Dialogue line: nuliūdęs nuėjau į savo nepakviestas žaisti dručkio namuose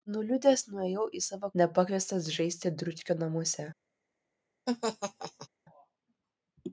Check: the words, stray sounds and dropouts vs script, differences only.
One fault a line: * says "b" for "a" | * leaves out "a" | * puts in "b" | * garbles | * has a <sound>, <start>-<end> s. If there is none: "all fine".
* has a laugh, 4.7-5.5 s